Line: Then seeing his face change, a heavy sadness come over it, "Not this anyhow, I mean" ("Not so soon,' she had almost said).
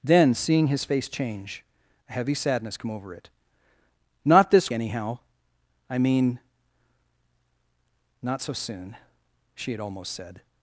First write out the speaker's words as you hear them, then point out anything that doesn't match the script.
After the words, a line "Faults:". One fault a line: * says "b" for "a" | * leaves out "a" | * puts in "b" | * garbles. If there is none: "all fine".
Then seeing his face change, a heavy sadness come over it, "Not this anyhow, I mean" ("Not so soon,' she had almost said).
Faults:
all fine